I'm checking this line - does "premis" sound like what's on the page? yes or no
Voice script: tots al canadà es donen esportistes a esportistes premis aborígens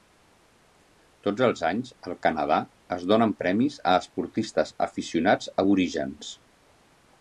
no